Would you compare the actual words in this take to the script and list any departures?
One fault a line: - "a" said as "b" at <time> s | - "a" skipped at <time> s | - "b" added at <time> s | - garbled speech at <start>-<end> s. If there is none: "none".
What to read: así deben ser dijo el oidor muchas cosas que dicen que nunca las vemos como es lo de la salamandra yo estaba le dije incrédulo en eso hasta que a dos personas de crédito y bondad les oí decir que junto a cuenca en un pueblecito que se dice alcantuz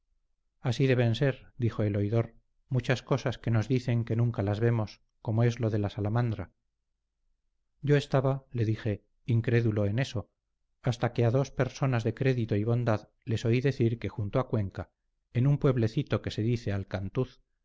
- "nos" added at 3.5 s